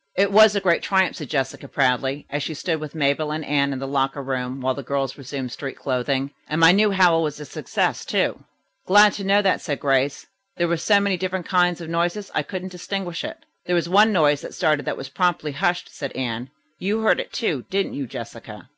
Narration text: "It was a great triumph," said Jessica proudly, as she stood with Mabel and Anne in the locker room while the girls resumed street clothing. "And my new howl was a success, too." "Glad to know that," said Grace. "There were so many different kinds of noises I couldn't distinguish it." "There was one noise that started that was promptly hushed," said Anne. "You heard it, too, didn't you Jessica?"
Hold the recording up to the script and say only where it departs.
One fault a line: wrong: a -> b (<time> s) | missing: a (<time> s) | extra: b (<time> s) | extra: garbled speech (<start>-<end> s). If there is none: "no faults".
no faults